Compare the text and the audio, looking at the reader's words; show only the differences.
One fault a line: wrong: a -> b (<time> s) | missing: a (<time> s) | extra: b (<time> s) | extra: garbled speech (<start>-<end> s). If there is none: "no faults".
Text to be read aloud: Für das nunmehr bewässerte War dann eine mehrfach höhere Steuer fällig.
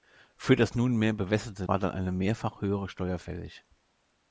no faults